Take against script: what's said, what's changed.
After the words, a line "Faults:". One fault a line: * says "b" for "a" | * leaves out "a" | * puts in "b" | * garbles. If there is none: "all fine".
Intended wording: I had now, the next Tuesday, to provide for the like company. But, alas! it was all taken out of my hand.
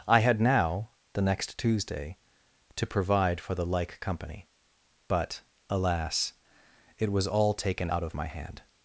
I had now, the next Tuesday, to provide for the like company. But, alas! it was all taken out of my hand.
Faults:
all fine